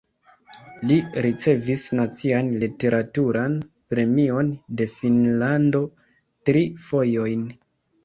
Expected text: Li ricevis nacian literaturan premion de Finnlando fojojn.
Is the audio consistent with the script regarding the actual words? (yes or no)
no